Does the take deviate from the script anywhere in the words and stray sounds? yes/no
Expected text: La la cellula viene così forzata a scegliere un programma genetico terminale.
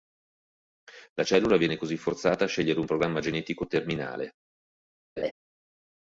yes